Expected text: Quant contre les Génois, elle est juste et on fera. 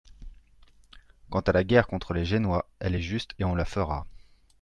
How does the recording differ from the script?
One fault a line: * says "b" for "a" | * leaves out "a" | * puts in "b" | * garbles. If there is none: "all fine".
* puts in "à la guerre"
* puts in "la"